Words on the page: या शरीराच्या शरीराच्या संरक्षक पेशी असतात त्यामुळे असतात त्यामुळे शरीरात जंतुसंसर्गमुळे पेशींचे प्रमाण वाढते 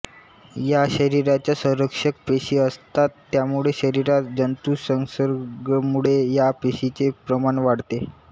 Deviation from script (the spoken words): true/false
true